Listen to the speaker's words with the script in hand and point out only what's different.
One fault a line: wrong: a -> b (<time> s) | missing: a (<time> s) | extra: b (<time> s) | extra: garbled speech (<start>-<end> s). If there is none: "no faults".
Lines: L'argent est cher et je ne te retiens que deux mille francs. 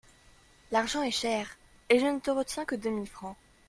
no faults